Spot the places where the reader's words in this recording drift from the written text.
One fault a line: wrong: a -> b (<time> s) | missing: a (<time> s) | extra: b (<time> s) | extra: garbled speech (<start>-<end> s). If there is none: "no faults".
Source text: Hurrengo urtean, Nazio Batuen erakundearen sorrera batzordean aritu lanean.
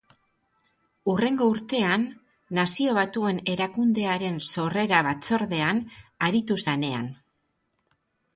no faults